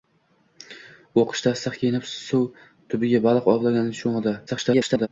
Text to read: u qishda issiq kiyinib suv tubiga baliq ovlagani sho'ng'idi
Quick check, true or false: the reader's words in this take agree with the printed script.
false